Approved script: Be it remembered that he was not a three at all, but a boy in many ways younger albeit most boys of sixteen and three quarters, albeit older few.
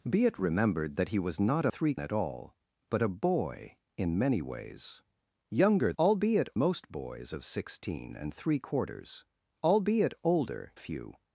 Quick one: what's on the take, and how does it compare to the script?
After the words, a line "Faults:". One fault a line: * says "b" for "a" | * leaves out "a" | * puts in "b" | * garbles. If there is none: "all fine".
Be it remembered that he was not a three at all, but a boy in many ways younger albeit most boys of sixteen and three quarters, albeit older few.
Faults:
all fine